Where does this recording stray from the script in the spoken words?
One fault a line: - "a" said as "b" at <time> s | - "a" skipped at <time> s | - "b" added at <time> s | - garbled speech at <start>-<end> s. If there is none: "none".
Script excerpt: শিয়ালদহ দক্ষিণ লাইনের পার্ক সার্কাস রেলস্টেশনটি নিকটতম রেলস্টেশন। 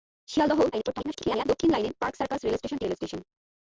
- garbled speech at 0.7-1.4 s
- "নিকটতম" skipped at 2.8 s